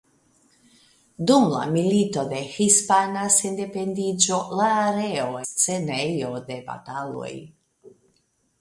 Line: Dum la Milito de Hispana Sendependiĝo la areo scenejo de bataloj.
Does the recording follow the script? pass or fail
pass